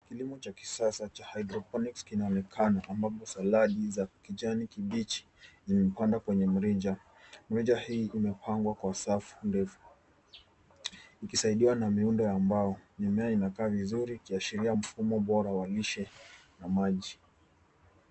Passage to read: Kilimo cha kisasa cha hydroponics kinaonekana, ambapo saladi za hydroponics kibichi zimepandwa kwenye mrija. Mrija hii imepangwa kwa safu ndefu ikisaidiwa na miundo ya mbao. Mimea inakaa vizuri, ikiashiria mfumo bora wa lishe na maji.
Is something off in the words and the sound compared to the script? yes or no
yes